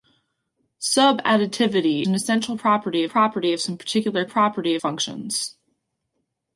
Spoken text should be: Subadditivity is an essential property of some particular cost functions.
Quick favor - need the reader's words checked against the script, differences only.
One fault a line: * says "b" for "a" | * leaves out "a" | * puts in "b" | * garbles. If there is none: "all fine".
* leaves out "is"
* puts in "property"
* says "property" for "cost"